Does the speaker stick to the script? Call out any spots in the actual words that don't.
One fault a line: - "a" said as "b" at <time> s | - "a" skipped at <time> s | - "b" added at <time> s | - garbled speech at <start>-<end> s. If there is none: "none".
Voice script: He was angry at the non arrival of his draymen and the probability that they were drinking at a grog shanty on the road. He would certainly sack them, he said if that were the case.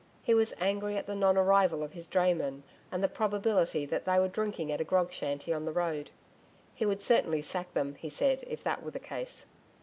none